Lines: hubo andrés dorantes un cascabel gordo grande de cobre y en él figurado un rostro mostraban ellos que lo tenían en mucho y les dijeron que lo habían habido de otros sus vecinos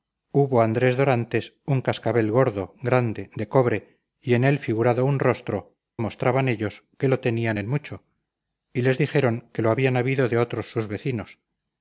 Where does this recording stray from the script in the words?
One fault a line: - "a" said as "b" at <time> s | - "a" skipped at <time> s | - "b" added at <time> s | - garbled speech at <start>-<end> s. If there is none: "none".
none